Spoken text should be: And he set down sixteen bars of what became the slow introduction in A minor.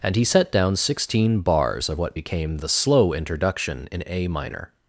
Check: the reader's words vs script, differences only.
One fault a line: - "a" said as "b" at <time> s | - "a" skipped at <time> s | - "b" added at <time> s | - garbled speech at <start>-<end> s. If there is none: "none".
none